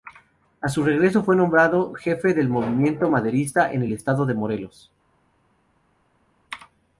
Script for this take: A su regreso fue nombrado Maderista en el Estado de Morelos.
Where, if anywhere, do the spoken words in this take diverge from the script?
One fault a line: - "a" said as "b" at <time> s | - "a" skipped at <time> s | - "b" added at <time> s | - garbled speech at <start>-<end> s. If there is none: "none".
- "jefe del movimiento" added at 1.9 s